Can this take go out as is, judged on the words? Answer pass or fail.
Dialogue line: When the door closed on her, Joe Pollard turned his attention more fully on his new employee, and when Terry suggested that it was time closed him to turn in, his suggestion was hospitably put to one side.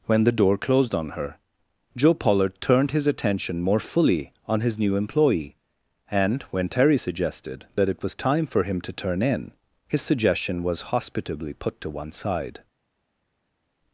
fail